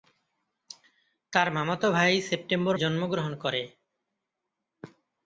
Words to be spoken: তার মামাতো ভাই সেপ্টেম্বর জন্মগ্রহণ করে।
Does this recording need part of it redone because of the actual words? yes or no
no